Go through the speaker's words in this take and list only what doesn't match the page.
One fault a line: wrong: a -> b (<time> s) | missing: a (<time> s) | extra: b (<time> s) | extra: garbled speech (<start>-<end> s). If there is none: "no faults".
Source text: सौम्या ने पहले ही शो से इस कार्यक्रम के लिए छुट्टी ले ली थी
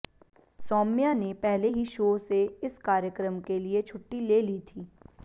no faults